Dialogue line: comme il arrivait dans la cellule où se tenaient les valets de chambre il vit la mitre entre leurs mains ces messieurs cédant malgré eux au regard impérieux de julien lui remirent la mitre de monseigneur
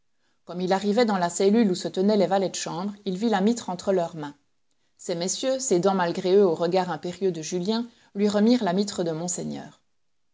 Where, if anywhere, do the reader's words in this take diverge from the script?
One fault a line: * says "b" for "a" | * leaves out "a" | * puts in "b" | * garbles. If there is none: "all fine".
all fine